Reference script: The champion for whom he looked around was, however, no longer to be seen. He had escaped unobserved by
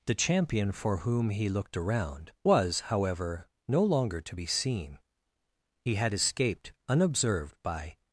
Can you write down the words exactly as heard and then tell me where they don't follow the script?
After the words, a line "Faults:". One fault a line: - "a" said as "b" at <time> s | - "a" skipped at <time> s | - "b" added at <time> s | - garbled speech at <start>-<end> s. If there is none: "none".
The champion for whom he looked around was, however, no longer to be seen. He had escaped unobserved by
Faults:
none